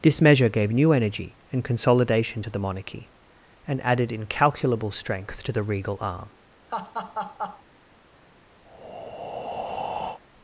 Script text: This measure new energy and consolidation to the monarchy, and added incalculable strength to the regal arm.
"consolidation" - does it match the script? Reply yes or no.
yes